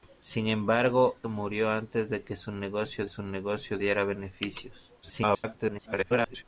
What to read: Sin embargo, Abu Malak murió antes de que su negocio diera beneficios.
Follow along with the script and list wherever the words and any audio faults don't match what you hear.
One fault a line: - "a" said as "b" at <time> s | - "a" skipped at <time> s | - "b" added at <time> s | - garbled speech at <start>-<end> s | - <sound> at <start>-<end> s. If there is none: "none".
- "Abu Malak" skipped at 1.1 s
- "su negocio" added at 3.1 s
- garbled speech at 5.0-6.4 s